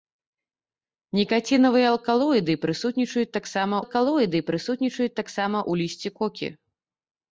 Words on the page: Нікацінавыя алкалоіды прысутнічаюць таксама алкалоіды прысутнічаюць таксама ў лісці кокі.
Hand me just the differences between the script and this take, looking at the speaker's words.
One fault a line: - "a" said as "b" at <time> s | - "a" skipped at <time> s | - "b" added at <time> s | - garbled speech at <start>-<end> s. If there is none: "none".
none